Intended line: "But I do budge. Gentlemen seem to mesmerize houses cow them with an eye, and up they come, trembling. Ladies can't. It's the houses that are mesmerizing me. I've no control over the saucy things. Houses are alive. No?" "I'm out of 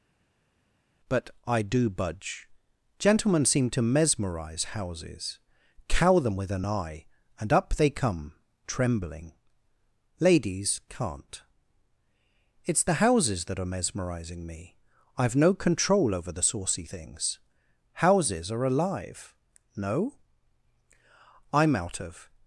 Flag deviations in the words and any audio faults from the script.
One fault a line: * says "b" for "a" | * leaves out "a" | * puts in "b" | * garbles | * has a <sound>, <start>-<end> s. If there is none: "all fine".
all fine